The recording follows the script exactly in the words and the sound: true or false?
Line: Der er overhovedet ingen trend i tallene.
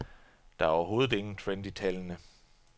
true